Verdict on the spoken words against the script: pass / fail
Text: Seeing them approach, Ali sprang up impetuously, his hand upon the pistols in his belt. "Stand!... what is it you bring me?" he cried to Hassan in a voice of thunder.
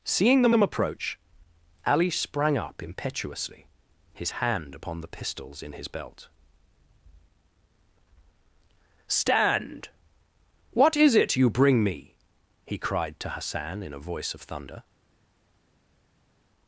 fail